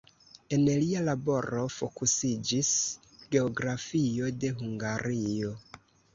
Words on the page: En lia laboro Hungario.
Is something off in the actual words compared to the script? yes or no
yes